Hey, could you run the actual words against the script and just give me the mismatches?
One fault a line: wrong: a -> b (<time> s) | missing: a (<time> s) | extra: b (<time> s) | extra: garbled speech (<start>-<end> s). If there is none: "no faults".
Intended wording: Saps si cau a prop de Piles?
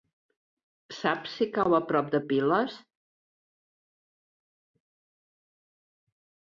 no faults